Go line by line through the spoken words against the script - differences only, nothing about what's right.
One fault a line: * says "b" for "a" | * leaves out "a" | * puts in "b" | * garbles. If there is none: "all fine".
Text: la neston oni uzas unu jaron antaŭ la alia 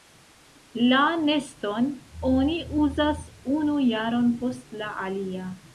* says "post" for "antaŭ"